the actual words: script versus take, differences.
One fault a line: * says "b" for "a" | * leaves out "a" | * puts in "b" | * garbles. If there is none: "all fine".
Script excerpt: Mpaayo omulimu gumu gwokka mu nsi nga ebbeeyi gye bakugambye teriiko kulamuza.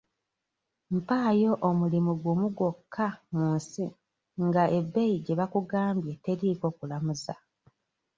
all fine